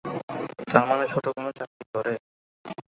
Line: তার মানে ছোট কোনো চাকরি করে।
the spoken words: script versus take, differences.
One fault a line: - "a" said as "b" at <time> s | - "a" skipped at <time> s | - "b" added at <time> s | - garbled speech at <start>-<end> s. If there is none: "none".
none